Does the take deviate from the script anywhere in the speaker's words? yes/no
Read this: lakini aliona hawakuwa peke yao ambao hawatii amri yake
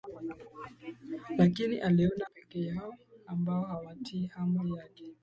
yes